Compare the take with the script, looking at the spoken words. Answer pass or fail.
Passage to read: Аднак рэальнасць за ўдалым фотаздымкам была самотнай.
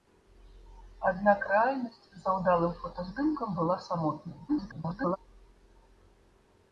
fail